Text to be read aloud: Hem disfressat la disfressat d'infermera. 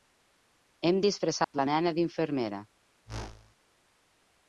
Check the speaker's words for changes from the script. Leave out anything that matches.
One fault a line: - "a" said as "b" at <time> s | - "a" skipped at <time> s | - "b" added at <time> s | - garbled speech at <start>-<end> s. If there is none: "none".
- "disfressat" said as "nena" at 1.7 s